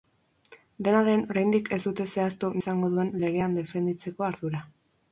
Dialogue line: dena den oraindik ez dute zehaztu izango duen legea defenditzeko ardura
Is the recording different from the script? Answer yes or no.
no